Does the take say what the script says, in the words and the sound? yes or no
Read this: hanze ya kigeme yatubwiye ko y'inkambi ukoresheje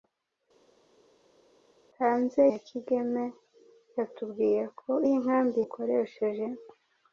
yes